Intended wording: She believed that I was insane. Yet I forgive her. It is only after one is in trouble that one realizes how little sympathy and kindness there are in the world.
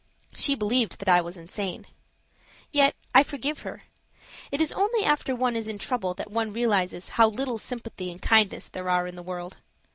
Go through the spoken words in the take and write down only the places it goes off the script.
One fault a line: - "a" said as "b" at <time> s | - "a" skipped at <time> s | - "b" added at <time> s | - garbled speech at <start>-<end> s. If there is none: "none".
none